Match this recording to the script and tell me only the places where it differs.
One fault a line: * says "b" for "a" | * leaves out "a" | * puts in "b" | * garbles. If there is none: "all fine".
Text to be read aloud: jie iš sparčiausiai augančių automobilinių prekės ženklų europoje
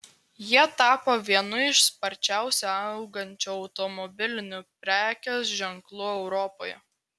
* puts in "tapo vienu"